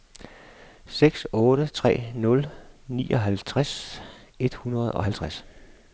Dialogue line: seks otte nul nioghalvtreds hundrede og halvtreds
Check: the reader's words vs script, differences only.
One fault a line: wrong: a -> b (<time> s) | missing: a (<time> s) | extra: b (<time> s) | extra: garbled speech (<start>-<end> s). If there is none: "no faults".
extra: tre (1.7 s)
extra: et (4.4 s)